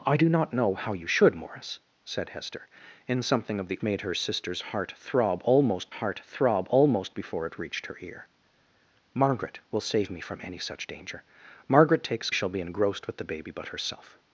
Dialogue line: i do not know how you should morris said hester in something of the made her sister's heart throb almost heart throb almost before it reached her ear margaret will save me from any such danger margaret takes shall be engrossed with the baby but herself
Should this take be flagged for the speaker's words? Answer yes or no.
no